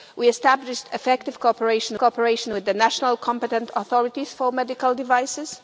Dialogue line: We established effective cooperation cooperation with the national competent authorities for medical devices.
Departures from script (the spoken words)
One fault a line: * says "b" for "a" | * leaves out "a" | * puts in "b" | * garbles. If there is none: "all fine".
all fine